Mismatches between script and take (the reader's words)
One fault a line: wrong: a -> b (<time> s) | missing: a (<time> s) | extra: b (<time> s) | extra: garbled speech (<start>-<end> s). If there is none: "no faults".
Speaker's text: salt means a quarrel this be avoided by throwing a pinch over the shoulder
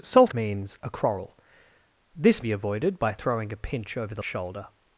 no faults